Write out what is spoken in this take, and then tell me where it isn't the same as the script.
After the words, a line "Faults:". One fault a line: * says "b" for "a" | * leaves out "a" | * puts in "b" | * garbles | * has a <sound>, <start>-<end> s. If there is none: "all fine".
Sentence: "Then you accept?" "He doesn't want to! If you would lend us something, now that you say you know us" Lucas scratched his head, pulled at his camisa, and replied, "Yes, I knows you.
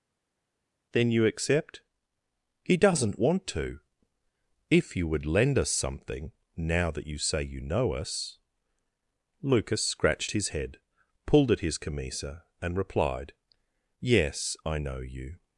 "Then you accept?" "He doesn't want to! If you would lend us something, now that you say you know us" Lucas scratched his head, pulled at his camisa, and replied, "Yes, I know you.
Faults:
* says "know" for "knows"